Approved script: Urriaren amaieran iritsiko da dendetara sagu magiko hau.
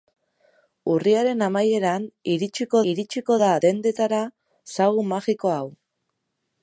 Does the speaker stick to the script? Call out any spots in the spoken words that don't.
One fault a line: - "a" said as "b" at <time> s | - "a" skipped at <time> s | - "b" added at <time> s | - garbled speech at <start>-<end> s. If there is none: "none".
- "iritsiko" added at 2.9 s